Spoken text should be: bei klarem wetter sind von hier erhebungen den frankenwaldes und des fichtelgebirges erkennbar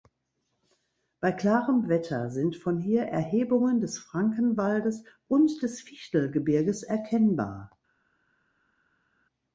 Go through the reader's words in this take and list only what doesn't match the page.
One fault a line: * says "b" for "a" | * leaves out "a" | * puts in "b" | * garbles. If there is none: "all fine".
* says "des" for "den"